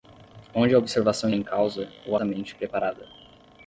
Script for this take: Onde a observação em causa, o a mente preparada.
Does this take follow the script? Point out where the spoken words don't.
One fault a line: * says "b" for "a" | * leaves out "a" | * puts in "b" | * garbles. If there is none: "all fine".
all fine